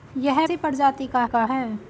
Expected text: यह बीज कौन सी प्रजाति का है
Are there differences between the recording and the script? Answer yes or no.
yes